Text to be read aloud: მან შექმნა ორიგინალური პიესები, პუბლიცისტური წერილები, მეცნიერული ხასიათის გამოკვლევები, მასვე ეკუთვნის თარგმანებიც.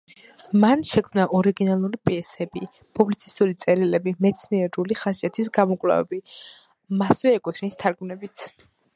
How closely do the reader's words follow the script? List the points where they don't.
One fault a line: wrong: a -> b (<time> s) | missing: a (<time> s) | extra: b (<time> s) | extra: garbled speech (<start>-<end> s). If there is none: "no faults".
no faults